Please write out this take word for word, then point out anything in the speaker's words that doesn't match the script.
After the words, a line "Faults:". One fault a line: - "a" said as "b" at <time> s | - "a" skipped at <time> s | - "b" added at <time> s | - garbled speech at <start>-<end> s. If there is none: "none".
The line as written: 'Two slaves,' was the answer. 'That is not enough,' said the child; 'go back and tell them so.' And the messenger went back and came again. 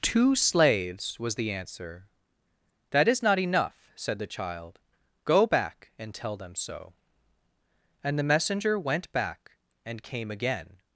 'Two slaves,' was the answer. 'That is not enough,' said the child; 'go back and tell them so.' And the messenger went back and came again.
Faults:
none